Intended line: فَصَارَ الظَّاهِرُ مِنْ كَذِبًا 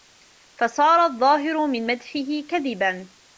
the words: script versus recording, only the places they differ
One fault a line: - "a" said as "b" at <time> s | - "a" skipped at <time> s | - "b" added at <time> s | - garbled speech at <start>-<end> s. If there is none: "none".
- "مَدْحِهِ" added at 1.9 s